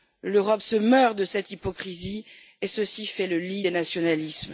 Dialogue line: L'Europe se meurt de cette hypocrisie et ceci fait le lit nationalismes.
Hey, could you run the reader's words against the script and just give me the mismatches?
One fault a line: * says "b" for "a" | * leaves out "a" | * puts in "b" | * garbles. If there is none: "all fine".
* puts in "des"